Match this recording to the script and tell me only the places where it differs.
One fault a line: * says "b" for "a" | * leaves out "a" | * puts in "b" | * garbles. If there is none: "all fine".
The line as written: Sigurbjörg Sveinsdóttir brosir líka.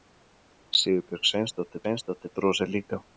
* puts in "Sveinsdóttir"